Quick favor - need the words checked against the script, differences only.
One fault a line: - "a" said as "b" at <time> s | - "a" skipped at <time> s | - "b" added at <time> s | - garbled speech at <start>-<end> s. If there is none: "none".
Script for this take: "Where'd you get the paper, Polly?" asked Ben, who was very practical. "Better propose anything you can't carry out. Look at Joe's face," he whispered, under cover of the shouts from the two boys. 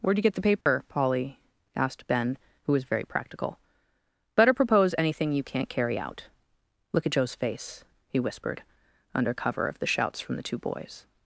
none